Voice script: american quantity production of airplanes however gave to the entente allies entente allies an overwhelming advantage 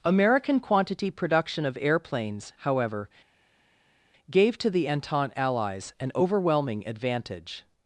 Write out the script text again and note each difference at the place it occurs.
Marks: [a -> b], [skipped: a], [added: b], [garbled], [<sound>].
american quantity production of airplanes however gave to the entente allies [skipped: entente allies] an overwhelming advantage